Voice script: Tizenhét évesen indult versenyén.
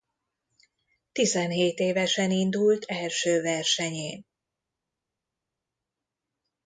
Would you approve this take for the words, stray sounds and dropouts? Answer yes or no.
no